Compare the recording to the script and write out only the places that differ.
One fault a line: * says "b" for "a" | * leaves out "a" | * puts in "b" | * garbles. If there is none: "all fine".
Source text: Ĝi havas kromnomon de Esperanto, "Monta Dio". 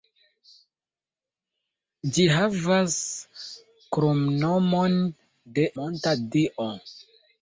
* leaves out "Esperanto"